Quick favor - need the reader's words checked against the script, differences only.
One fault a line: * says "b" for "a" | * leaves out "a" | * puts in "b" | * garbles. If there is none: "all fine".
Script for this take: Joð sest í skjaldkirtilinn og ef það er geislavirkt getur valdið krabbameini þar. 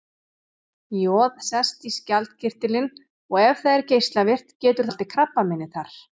all fine